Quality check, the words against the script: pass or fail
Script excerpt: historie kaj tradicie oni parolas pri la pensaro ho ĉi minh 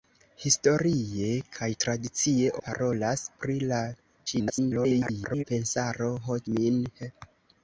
fail